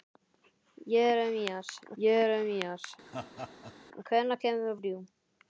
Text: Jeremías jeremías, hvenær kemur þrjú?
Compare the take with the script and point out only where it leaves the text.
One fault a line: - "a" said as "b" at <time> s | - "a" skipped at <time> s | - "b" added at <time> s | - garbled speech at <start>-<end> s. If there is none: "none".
none